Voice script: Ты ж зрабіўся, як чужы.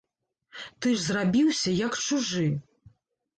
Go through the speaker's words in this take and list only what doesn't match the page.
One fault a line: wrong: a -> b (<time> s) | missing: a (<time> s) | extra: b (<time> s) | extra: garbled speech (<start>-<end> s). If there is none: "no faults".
no faults